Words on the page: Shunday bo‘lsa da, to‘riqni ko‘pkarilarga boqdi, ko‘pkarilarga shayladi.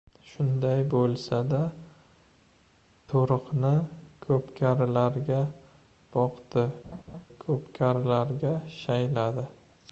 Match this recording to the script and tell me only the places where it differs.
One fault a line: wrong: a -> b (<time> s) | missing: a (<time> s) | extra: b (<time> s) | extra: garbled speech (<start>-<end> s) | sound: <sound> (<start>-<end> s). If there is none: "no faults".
sound: laugh (6.8-7.3 s)